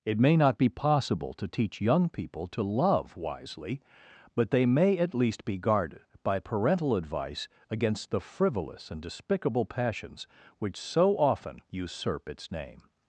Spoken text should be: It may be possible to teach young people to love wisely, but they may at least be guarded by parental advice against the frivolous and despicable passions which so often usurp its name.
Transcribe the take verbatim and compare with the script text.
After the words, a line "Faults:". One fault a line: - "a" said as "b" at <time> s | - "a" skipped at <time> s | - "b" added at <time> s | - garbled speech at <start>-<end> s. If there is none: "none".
It may not be possible to teach young people to love wisely, but they may at least be guarded by parental advice against the frivolous and despicable passions which so often usurp its name.
Faults:
- "not" added at 0.3 s